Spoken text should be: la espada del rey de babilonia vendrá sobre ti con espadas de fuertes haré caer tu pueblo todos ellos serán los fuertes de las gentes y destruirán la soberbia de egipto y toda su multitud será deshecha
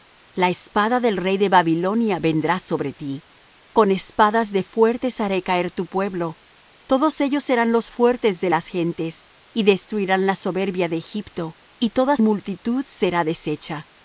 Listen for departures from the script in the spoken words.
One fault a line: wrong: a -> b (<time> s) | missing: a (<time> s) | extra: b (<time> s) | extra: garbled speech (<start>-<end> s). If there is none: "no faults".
missing: su (12.2 s)